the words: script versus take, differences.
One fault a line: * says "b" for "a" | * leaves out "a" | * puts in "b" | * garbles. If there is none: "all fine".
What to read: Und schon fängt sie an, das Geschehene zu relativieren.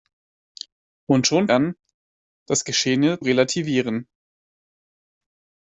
* leaves out "fängt sie"
* leaves out "zu"